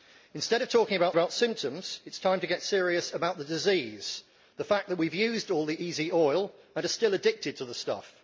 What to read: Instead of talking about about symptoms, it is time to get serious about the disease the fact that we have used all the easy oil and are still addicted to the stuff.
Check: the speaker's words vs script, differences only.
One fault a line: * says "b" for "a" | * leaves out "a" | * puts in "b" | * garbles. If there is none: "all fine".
all fine